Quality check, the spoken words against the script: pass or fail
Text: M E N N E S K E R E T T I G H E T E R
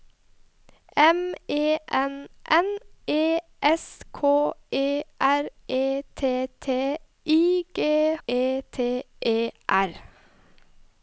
fail